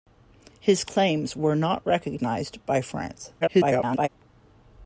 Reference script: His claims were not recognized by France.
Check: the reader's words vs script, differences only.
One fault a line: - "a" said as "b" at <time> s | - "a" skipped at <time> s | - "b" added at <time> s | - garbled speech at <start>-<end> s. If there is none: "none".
- garbled speech at 3.4-4.1 s